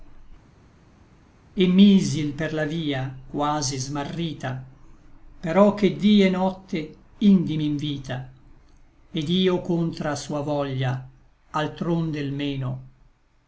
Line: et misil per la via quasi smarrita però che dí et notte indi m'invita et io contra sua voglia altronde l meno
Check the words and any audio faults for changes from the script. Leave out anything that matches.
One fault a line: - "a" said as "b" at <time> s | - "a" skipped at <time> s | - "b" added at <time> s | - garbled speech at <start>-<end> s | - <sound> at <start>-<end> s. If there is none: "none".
none